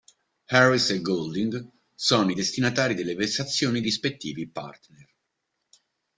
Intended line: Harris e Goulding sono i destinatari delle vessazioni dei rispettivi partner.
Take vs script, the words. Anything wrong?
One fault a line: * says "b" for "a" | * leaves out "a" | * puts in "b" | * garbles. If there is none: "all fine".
* leaves out "dei"